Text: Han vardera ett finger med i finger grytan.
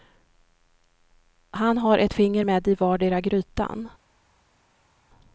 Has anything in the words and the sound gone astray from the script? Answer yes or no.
yes